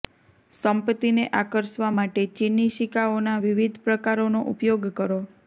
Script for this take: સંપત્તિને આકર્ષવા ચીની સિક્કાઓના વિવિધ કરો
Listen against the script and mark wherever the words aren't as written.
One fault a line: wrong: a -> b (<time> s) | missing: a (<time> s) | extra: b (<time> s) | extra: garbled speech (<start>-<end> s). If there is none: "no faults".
extra: માટે (2.0 s)
extra: પ્રકારોનો ઉપયોગ (3.9 s)